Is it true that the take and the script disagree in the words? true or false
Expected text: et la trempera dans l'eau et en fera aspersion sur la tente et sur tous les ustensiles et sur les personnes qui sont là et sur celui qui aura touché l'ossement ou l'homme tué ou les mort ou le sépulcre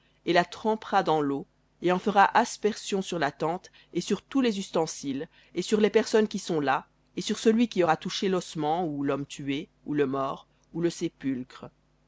true